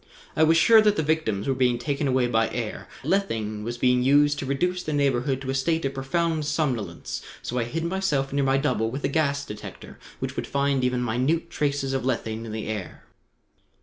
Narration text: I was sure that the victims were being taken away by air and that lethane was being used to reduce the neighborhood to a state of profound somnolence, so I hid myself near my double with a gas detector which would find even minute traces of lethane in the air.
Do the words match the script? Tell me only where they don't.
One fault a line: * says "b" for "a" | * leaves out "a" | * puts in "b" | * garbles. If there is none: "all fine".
* leaves out "and that"